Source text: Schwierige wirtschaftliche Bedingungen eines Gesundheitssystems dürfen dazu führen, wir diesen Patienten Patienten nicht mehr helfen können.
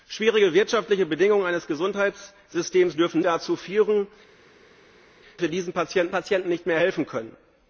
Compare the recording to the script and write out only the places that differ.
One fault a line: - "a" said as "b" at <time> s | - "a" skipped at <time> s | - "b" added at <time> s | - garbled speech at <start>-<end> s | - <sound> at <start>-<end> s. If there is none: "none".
none